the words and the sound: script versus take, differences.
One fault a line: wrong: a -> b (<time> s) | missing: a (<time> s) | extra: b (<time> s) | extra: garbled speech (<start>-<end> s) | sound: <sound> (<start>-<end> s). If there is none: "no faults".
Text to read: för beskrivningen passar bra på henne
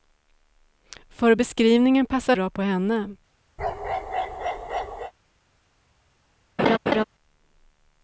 sound: bark (3.6-5.1 s)
sound: laugh (6.6-7.0 s)